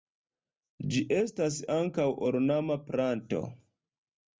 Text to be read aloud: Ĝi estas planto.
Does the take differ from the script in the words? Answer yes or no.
yes